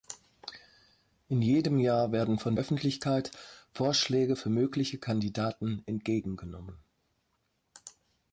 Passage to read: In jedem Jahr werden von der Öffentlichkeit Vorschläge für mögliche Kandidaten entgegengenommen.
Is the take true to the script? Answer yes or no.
no